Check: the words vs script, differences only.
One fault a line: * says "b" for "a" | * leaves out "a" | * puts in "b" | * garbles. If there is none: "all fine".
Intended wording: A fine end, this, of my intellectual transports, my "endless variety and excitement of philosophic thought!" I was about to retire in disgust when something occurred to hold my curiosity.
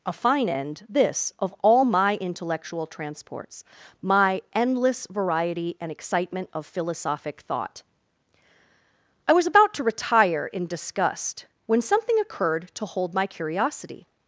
* puts in "all"